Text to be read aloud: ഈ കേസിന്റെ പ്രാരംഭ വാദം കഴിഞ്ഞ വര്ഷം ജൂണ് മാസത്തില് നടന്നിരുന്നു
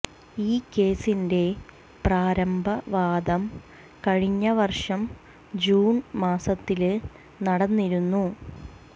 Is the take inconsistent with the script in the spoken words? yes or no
no